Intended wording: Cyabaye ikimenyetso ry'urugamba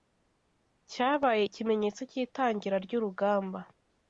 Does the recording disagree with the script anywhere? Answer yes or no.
yes